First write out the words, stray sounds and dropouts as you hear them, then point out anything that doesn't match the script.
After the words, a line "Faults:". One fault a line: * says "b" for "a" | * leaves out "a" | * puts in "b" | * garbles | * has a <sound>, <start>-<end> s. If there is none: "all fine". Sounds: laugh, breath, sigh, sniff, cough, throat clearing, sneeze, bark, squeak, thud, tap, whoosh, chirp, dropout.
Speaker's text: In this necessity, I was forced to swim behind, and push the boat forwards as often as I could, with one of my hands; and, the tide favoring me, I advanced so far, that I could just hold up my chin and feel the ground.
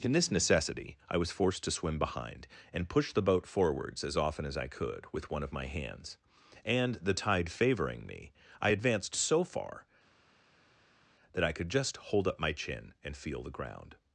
In this necessity, I was forced to swim behind, and push the boat forwards as often as I could, with one of my hands; and, the tide favoring me, I advanced so far, that I could just hold up my chin and feel the ground.
Faults:
all fine